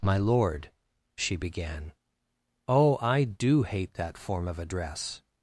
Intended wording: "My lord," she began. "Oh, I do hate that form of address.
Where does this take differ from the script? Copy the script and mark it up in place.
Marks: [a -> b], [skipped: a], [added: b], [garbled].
"My lord," she began. "Oh, I do hate that form of address.